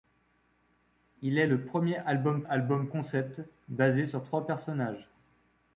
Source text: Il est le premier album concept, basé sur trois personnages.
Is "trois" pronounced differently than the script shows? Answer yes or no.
no